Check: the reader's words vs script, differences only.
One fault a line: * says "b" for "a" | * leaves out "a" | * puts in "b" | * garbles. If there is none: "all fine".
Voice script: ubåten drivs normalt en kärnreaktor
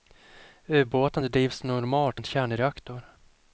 all fine